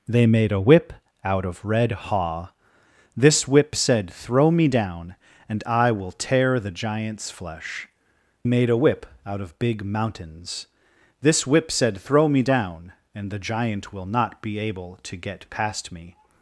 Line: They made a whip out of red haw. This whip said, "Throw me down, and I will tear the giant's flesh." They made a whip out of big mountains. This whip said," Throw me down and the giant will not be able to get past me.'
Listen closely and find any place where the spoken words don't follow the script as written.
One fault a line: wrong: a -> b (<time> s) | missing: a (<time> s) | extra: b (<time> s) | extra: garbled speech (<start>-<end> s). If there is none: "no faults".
missing: They (7.9 s)